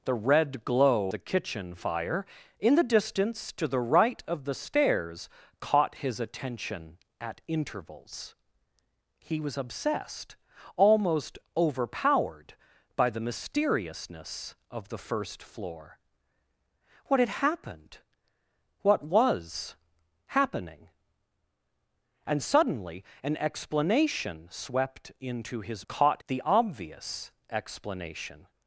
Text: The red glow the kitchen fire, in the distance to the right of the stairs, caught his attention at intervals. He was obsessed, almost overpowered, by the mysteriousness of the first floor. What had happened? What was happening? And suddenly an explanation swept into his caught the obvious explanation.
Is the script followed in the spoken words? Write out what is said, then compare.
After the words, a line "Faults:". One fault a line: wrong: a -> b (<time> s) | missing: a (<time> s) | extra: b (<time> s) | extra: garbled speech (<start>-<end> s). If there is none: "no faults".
The red glow the kitchen fire, in the distance to the right of the stairs, caught his attention at intervals. He was obsessed, almost overpowered, by the mysteriousness of the first floor. What had happened? What was happening? And suddenly an explanation swept into his caught the obvious explanation.
Faults:
no faults